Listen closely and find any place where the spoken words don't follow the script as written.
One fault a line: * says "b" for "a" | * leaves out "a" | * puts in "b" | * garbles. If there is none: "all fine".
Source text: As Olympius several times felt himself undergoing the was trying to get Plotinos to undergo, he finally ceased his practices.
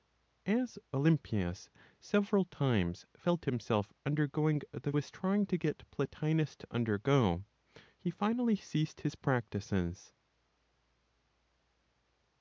all fine